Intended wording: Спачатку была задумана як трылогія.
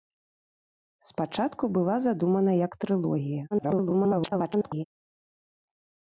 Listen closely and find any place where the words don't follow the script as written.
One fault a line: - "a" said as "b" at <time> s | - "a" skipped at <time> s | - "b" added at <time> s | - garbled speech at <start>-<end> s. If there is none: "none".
- garbled speech at 3.5-4.8 s